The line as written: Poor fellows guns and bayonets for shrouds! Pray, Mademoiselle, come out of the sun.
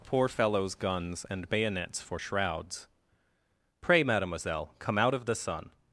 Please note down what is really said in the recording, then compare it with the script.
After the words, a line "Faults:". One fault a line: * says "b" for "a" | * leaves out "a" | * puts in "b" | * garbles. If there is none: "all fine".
Poor fellows guns and bayonets for shrouds! Pray, Mademoiselle, come out of the sun.
Faults:
all fine